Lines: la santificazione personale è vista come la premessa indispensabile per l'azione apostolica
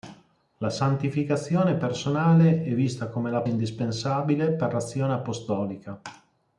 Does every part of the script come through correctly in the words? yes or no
no